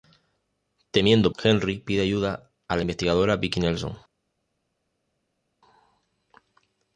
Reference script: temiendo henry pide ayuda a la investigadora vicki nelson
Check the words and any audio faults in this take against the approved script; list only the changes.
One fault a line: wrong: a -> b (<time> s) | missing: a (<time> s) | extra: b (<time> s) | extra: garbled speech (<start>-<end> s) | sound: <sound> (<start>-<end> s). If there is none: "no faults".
no faults